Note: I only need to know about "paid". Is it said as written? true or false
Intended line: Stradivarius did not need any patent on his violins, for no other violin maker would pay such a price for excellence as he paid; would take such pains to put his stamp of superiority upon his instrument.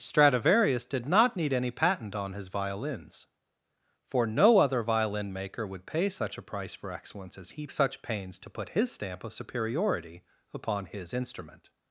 false